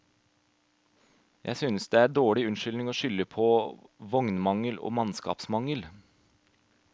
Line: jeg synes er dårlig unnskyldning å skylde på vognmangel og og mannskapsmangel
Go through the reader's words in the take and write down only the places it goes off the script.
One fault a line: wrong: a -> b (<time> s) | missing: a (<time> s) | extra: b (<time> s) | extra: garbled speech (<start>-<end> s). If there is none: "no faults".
extra: det (1.9 s)
missing: og (4.9 s)